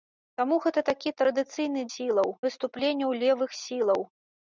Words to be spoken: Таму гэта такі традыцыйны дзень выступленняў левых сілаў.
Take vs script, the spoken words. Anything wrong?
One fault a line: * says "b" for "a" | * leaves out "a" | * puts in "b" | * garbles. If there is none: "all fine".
* says "сілаў" for "дзень"